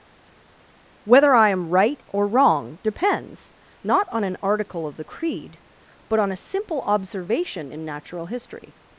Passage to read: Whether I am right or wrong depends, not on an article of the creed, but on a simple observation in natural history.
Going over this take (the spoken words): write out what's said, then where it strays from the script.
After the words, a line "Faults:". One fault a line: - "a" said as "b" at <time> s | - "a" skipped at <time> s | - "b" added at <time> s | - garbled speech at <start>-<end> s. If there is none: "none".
Whether I am right or wrong depends, not on an article of the creed, but on a simple observation in natural history.
Faults:
none